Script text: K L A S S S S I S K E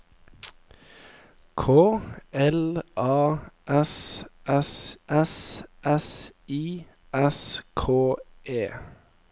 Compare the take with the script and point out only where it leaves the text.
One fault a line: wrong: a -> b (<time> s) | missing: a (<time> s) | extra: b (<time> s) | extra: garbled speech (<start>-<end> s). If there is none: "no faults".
no faults